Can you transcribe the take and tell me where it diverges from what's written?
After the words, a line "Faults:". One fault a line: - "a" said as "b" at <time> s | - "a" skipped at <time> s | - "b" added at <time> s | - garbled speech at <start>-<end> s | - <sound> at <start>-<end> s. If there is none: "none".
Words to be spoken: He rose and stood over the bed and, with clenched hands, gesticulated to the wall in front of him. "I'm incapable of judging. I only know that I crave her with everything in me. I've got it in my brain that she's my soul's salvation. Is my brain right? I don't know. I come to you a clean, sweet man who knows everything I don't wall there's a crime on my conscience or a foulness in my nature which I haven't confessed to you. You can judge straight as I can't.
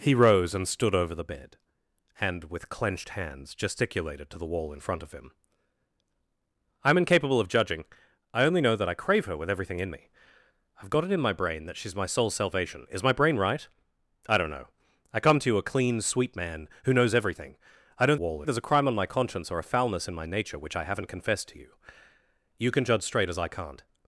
He rose and stood over the bed and, with clenched hands, gesticulated to the wall in front of him. "I'm incapable of judging. I only know that I crave her with everything in me. I've got it in my brain that she's my soul's salvation. Is my brain right? I don't know. I come to you a clean, sweet man who knows everything I don't wall there's a crime on my conscience or a foulness in my nature which I haven't confessed to you. You can judge straight as I can't.
Faults:
none